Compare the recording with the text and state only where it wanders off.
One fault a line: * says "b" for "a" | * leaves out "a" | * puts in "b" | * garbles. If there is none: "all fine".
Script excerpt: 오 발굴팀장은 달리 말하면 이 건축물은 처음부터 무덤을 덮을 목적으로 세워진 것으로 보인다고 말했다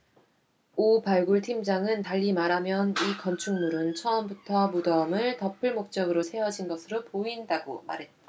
all fine